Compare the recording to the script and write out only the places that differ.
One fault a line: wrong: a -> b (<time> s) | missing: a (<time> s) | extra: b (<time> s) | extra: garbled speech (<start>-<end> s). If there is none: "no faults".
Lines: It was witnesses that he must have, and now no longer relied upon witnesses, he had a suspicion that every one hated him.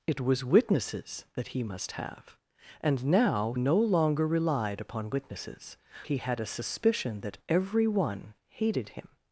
no faults